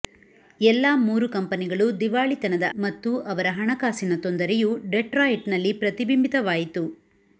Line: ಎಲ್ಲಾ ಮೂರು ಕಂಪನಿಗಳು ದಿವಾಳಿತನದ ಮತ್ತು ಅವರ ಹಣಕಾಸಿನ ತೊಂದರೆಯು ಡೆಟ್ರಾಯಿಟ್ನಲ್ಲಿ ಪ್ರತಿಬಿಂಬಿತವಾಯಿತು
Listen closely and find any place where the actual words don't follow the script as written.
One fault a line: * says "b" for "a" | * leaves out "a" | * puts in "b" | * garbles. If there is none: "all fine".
all fine